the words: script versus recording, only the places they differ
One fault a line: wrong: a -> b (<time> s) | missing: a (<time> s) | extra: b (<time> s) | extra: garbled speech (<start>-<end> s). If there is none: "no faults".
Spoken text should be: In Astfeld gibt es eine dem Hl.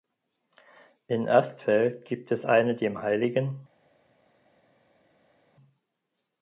no faults